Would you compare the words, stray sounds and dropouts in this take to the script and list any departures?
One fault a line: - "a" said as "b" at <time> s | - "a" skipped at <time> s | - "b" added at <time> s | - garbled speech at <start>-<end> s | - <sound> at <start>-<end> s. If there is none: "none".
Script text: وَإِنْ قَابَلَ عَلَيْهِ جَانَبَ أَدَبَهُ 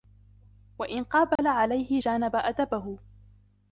- dropout at 1.4-1.4 s